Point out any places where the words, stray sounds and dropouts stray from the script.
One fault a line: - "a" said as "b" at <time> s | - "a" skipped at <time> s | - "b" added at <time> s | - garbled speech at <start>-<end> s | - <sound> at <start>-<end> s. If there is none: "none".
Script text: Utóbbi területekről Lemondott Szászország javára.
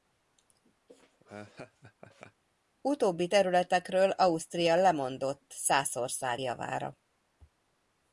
- laugh at 0.9-2.4 s
- "Ausztria" added at 4.1 s